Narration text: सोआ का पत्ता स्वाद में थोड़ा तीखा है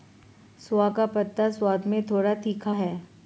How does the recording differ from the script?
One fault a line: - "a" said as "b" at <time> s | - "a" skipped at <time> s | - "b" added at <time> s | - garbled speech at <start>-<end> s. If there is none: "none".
none